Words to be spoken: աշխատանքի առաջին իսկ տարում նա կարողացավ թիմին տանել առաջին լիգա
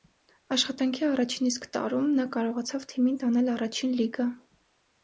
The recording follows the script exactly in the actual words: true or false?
true